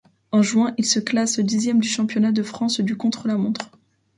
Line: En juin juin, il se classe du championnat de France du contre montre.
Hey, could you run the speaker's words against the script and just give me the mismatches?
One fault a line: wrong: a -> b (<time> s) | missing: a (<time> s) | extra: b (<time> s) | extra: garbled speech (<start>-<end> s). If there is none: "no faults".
missing: juin (0.7 s)
extra: dixième (1.4 s)
extra: la (3.3 s)